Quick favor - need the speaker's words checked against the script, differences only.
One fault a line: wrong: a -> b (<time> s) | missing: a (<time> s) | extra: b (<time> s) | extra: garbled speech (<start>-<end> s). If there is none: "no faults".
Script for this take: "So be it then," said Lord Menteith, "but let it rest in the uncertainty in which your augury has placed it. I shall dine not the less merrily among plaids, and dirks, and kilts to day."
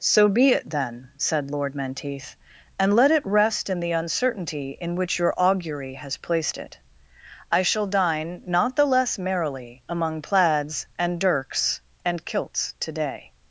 wrong: but -> and (2.8 s)